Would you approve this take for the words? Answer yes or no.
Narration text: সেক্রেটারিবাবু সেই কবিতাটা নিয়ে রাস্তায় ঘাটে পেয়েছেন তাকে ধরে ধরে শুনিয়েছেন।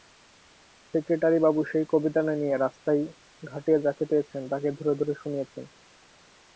no